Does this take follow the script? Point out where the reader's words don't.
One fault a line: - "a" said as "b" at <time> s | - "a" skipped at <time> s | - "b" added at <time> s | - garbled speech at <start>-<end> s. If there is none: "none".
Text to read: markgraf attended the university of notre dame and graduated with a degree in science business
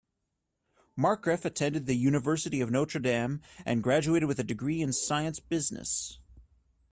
none